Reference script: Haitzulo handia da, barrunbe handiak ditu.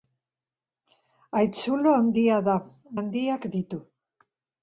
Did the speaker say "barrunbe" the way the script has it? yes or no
no